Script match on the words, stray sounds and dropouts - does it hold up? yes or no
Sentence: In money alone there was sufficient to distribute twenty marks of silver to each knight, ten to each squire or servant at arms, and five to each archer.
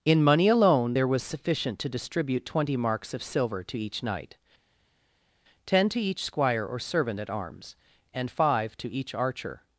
yes